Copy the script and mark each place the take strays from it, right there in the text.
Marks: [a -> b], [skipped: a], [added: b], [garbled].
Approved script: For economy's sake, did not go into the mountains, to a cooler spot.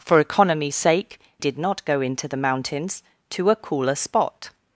For economy's sake, did not go into the mountains, to a cooler spot.